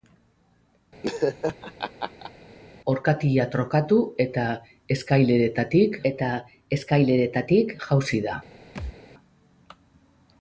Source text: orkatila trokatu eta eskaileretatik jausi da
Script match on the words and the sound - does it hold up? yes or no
no